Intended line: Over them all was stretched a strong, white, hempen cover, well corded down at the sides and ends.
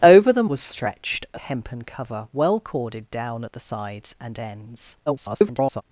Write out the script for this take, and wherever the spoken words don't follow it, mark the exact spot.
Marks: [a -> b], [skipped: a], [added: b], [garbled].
Over them [skipped: all] was stretched a [skipped: strong, white,] hempen cover, well corded down at the sides and ends. [garbled]